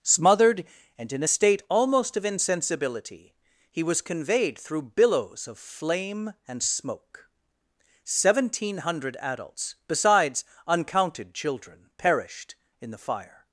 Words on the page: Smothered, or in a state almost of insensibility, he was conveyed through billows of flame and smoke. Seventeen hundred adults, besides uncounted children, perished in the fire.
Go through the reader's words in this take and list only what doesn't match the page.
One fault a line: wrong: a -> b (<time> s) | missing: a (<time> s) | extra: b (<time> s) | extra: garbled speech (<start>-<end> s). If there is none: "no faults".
wrong: or -> and (1.0 s)